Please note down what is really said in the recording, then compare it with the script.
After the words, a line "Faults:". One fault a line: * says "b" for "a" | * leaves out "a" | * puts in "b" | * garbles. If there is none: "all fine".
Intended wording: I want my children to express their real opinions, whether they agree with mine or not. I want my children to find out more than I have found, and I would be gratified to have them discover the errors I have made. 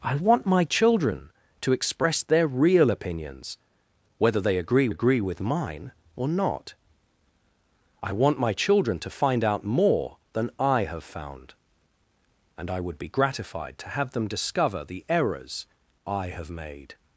I want my children to express their real opinions, whether they agree agree with mine or not. I want my children to find out more than I have found, and I would be gratified to have them discover the errors I have made.
Faults:
* puts in "agree"